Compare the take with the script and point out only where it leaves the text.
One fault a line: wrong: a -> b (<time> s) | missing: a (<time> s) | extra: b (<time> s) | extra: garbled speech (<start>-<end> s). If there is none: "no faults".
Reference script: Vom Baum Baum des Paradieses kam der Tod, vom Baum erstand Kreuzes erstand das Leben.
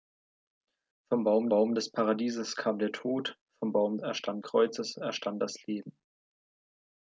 no faults